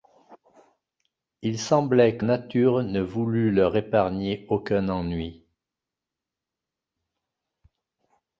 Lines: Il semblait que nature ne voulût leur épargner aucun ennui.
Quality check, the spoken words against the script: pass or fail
pass